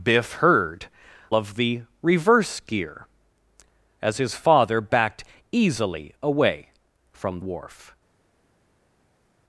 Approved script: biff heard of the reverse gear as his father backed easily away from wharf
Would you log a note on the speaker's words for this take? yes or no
no